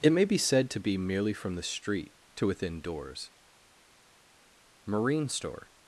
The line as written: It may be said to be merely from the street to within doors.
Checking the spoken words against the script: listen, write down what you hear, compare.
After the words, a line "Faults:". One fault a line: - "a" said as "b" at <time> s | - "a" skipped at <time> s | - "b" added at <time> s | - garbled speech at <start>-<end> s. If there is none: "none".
It may be said to be merely from the street to within doors. Marine store
Faults:
- "Marine store" added at 4.9 s